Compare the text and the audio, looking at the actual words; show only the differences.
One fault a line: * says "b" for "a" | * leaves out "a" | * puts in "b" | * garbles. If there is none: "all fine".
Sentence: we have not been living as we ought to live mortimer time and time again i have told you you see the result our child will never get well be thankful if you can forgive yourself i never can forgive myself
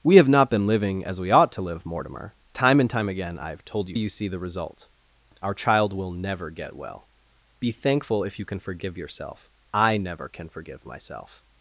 all fine